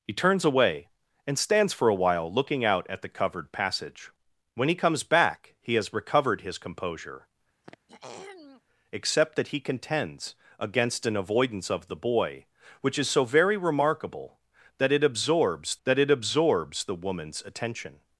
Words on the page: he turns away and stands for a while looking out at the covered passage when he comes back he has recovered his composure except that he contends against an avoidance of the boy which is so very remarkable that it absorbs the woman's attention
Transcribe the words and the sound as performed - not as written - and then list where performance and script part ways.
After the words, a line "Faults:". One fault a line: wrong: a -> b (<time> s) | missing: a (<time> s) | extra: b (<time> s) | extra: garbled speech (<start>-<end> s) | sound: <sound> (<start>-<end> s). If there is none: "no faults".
he turns away and stands for a while looking out at the covered passage when he comes back he has recovered his composure except that he contends against an avoidance of the boy which is so very remarkable that it absorbs that it absorbs the woman's attention
Faults:
sound: throat clearing (7.6-8.6 s)
extra: that it absorbs (15.8 s)